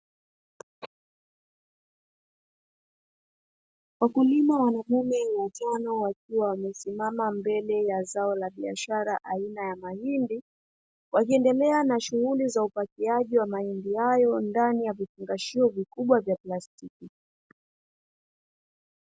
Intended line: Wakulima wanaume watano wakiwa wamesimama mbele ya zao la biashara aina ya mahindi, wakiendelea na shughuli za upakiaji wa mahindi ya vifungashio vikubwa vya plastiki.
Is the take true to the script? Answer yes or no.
no